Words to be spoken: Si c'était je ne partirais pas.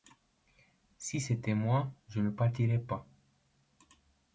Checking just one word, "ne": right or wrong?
right